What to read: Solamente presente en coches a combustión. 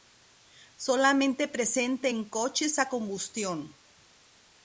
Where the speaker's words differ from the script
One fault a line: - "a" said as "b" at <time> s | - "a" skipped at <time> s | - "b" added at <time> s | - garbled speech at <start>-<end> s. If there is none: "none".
none